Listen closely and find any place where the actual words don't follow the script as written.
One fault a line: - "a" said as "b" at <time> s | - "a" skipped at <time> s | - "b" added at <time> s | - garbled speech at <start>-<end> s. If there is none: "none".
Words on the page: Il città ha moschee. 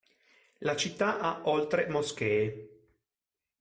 - "Il" said as "La" at 0.6 s
- "oltre" added at 1.5 s